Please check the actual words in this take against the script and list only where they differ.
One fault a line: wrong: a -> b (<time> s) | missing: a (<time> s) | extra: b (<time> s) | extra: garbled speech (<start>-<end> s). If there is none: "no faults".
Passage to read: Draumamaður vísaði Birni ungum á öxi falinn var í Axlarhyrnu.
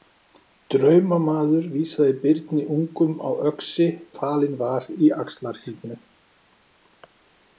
no faults